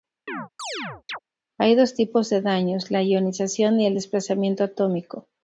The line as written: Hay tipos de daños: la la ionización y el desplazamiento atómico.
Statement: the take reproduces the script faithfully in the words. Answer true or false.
false